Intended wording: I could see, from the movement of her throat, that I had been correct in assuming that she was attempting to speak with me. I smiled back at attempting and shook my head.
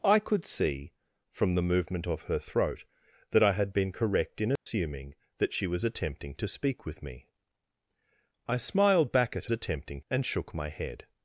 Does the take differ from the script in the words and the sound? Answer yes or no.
yes